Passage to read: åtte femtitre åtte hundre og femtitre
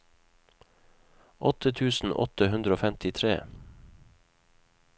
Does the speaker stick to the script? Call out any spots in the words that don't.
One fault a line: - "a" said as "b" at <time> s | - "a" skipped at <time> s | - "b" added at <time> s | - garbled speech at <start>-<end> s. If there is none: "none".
- "femtitre" said as "tusen" at 1.8 s